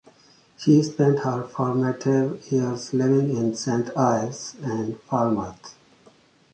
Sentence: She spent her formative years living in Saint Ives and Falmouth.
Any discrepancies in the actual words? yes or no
no